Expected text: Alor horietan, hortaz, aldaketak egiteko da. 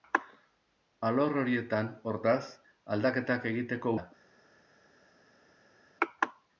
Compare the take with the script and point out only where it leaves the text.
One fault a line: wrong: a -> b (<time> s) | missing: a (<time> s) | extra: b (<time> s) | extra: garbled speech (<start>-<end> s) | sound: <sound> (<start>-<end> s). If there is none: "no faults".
no faults